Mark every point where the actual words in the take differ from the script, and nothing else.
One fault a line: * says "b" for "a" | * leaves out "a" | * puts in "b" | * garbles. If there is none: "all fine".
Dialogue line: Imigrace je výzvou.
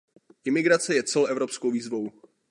* puts in "celoevropskou"